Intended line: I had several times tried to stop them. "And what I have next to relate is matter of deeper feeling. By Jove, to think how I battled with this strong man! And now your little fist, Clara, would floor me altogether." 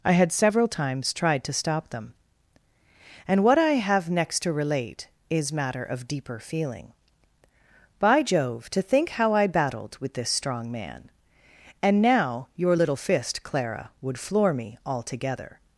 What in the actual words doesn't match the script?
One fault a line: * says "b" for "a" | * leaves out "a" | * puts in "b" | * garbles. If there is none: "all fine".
all fine